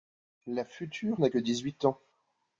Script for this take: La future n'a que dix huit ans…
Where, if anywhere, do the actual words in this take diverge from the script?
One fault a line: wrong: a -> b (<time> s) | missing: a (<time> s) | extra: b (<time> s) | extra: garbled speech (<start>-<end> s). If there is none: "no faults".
no faults